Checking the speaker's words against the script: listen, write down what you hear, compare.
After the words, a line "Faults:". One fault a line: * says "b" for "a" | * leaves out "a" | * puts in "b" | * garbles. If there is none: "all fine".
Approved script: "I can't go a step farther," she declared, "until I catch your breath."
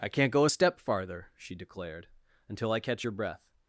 "I can't go a step farther," she declared, "until I catch your breath."
Faults:
all fine